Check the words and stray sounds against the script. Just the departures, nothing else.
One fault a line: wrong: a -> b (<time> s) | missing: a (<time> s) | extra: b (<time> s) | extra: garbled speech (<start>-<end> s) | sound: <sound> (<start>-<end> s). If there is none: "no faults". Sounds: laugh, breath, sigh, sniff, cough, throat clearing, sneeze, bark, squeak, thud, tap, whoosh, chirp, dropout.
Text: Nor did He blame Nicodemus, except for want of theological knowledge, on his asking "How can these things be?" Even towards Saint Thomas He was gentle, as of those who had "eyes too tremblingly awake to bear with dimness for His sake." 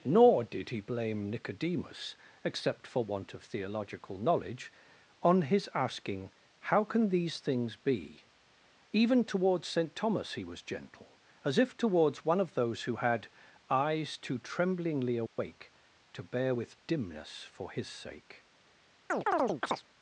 extra: if towards one (11.6 s)
sound: dropout (15.3-15.4 s)
sound: chirp (19.1-19.8 s)